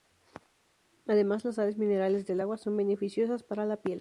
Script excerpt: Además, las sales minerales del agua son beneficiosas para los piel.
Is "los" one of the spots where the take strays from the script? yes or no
yes